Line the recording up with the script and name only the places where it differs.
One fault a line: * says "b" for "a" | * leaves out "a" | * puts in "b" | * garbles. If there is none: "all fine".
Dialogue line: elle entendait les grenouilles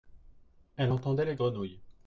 all fine